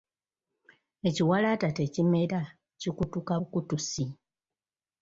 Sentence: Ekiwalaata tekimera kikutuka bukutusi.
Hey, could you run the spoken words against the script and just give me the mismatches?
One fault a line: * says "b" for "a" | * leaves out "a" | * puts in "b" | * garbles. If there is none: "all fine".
all fine